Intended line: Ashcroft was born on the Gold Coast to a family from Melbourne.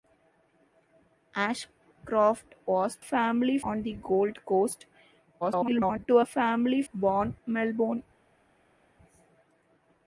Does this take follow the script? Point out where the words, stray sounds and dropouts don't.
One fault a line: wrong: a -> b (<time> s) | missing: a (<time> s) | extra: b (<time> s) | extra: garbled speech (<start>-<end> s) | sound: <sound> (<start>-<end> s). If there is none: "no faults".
wrong: born -> family (3.0 s)
extra: garbled speech (5.4-6.1 s)
wrong: from -> born (6.9 s)